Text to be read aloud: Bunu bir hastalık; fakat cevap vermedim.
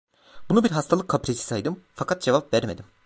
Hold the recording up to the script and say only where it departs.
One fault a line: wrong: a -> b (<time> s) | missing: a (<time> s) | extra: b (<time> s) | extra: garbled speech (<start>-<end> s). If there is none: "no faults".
extra: kaprisi saydım (1.1 s)